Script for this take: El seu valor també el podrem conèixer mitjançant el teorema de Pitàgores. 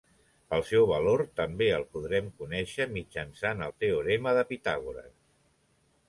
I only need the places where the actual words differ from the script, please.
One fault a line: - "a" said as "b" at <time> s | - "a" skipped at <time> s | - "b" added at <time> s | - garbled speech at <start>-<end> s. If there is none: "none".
none